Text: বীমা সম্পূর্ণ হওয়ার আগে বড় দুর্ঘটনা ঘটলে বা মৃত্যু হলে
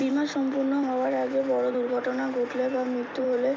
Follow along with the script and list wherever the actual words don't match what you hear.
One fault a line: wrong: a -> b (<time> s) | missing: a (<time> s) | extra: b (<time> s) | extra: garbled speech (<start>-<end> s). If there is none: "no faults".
no faults